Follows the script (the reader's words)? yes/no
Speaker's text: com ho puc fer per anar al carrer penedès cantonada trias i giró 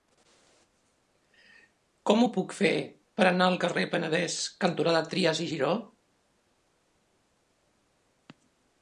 yes